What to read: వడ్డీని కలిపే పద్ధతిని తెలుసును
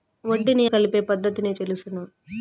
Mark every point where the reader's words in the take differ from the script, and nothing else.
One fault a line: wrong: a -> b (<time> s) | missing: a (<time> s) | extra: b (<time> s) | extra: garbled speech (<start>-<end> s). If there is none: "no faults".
no faults